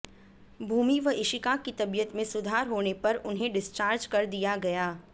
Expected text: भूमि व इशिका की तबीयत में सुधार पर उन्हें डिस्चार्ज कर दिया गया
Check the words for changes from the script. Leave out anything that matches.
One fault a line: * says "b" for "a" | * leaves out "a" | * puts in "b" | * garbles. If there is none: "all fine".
* puts in "होने"